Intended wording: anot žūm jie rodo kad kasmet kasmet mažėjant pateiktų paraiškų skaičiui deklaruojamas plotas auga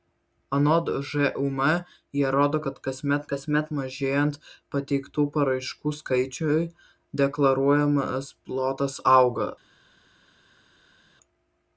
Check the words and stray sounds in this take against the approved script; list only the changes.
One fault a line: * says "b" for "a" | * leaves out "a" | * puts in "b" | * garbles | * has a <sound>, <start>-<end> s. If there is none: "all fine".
all fine